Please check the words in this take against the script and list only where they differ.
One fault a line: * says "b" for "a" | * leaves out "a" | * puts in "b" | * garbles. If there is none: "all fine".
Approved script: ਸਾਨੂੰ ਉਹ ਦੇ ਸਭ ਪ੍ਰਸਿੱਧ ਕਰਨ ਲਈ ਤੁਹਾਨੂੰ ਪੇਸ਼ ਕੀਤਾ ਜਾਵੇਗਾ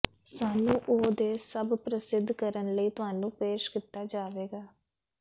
all fine